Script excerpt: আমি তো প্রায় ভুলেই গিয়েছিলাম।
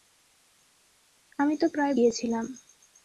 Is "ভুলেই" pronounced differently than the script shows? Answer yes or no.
yes